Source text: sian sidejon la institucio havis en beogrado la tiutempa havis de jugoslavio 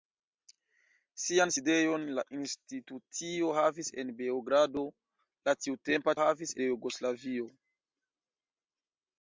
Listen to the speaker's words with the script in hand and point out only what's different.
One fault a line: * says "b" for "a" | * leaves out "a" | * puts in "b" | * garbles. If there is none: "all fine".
all fine